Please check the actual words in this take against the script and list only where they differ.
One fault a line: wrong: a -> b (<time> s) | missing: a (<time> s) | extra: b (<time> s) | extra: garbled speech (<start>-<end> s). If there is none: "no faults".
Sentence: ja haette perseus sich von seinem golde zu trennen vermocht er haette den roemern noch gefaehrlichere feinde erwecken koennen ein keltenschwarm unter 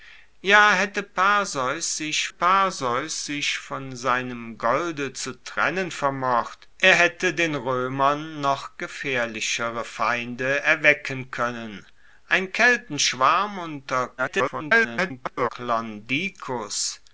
extra: perseus sich (2.3 s)
extra: garbled speech (14.2-15.5 s)